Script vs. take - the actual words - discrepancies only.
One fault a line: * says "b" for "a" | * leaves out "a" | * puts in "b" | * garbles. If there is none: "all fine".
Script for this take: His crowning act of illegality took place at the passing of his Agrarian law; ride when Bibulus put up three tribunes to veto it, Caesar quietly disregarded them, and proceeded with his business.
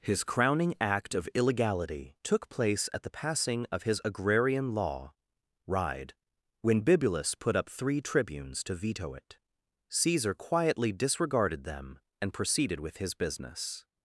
all fine